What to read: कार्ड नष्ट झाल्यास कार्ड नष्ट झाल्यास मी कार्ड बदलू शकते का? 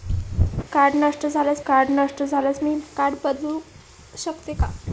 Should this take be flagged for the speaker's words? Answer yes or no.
no